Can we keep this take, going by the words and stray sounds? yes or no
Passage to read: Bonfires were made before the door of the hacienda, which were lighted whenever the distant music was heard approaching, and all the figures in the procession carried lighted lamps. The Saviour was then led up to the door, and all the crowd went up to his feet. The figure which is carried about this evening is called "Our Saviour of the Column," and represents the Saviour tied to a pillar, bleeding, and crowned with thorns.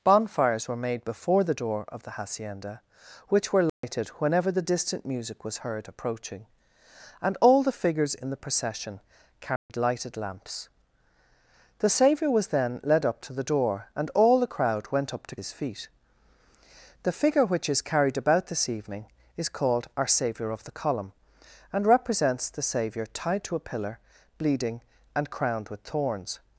no